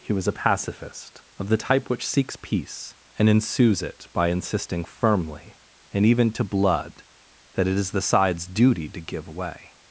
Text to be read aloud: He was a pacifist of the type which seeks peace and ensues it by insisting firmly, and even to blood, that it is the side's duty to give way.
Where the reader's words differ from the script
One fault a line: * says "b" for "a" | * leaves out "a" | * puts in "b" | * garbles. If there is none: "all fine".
all fine